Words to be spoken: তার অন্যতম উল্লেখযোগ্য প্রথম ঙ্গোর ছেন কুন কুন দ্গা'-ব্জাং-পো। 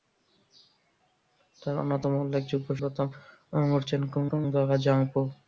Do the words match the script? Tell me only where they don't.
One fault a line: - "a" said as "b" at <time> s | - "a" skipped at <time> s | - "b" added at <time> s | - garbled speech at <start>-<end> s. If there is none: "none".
none